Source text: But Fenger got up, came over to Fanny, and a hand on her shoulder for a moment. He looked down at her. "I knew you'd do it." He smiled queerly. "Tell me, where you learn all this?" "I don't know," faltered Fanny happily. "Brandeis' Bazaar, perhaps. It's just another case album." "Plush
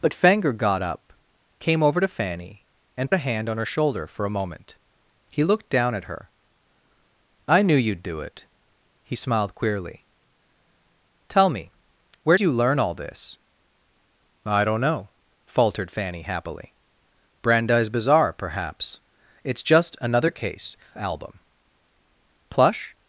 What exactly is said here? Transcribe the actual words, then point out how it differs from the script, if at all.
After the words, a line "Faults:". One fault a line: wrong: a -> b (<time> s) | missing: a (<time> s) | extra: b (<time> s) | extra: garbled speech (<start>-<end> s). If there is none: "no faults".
But Fenger got up, came over to Fanny, and a hand on her shoulder for a moment. He looked down at her. "I knew you'd do it." He smiled queerly. "Tell me, where you learn all this?" "I don't know," faltered Fanny happily. "Brandeis' Bazaar, perhaps. It's just another case album." "Plush
Faults:
no faults